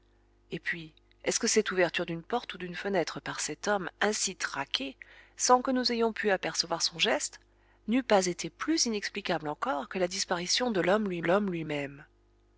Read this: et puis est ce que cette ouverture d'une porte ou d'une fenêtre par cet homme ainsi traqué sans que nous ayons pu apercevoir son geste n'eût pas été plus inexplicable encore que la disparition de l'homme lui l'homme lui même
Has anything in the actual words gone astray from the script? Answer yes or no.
no